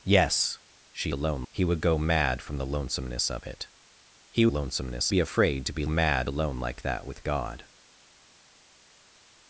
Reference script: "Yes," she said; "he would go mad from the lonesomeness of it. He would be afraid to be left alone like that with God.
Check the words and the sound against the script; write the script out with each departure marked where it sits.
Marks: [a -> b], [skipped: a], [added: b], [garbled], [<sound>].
"Yes," she [said; -> alone] "he would go mad from the lonesomeness of it. He [would -> lonesomeness] be afraid to be [left -> mad] alone like that with God.